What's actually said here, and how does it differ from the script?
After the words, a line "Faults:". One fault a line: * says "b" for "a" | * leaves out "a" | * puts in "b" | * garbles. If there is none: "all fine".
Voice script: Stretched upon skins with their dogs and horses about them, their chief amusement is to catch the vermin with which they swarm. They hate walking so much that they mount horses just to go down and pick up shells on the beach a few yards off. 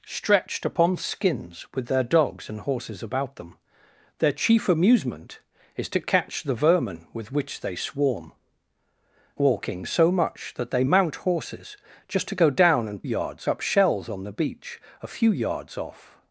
Stretched upon skins with their dogs and horses about them, their chief amusement is to catch the vermin with which they swarm. Walking so much that they mount horses just to go down and yards up shells on the beach a few yards off.
Faults:
* leaves out "They hate"
* says "yards" for "pick"